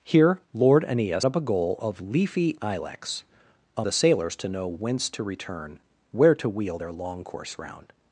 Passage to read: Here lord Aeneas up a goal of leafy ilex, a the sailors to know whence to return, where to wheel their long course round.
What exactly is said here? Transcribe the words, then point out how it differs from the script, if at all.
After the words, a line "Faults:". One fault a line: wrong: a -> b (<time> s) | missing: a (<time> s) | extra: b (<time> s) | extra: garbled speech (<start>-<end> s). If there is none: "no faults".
Here lord Aeneas up a goal of leafy ilex, a the sailors to know whence to return, where to wheel their long course round.
Faults:
no faults